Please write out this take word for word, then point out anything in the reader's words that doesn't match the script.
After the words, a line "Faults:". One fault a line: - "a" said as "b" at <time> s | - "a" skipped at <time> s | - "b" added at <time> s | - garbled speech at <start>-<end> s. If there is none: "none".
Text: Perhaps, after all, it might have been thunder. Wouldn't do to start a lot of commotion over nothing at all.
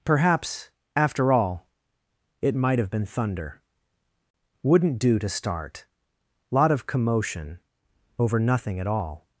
Perhaps, after all, it might have been thunder. Wouldn't do to start lot of commotion over nothing at all.
Faults:
- "a" skipped at 5.8 s